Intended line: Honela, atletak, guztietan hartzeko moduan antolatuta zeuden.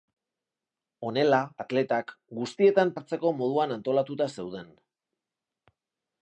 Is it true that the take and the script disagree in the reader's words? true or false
false